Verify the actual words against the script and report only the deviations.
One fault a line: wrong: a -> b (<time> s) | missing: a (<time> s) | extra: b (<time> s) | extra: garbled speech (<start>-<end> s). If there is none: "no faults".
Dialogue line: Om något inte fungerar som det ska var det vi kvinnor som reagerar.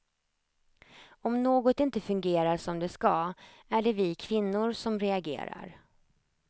wrong: var -> är (3.7 s)